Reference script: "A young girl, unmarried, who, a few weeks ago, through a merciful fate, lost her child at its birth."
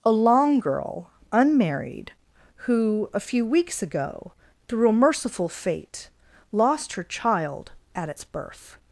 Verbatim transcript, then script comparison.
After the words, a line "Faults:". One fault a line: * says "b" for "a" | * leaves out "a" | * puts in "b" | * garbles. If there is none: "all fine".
"A long girl, unmarried, who, a few weeks ago, through a merciful fate, lost her child at its birth."
Faults:
* says "long" for "young"